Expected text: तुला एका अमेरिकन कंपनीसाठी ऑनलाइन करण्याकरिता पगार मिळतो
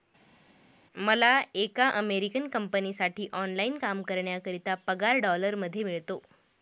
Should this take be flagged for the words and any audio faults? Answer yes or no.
yes